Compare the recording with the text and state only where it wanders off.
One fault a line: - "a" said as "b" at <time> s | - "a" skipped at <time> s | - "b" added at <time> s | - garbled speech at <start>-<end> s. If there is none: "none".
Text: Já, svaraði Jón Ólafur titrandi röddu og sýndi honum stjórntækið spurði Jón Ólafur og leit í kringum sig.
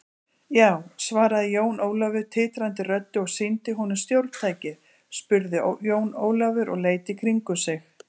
none